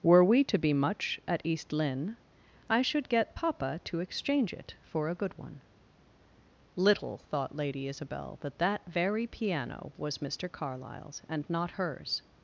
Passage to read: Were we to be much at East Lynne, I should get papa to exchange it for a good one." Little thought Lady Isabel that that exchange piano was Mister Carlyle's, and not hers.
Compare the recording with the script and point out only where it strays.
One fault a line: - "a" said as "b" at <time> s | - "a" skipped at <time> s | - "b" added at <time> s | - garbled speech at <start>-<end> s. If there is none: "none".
- "exchange" said as "very" at 8.9 s